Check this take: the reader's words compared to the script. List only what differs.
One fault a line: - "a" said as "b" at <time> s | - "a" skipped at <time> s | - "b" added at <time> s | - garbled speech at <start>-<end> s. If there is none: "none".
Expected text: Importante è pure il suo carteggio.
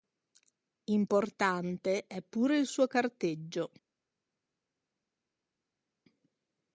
none